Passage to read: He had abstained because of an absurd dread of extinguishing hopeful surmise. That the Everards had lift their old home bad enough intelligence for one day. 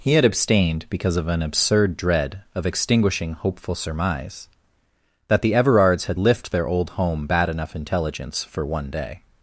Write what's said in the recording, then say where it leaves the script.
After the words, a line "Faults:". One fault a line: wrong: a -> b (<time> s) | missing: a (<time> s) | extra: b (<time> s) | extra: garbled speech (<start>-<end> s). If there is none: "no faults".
He had abstained because of an absurd dread of extinguishing hopeful surmise. That the Everards had lift their old home bad enough intelligence for one day.
Faults:
no faults